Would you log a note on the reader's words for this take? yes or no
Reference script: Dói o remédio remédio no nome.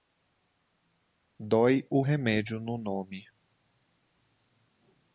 yes